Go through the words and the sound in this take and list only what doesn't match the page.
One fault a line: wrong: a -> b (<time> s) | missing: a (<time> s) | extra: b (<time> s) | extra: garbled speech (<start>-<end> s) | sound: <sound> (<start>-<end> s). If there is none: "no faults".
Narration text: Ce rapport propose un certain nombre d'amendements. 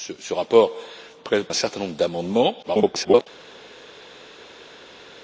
missing: propose (0.7 s)
extra: garbled speech (2.6-3.3 s)